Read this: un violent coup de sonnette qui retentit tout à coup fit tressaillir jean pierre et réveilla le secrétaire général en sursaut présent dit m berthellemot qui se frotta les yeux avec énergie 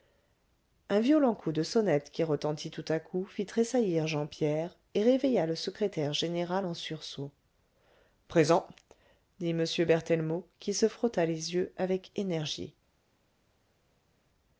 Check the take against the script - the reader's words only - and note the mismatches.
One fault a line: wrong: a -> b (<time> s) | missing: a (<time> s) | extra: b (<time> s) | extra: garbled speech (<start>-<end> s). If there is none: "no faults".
no faults